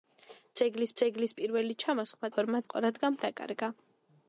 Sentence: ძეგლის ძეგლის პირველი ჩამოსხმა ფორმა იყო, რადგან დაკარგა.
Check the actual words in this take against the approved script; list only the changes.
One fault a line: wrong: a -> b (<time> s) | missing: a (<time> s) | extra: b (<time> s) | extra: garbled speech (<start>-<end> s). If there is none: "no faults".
no faults